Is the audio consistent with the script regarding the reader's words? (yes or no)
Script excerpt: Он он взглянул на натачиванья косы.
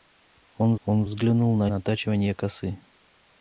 yes